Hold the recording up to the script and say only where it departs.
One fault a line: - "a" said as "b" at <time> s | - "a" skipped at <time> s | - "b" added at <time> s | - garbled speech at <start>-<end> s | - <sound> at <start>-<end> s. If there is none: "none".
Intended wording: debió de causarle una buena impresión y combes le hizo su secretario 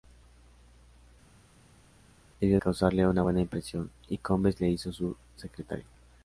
- "de" skipped at 2.6 s